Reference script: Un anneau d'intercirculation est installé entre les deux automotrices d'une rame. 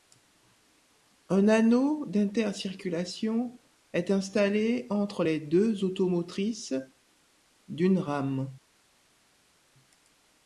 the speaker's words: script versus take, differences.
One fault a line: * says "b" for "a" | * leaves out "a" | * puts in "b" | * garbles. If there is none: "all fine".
all fine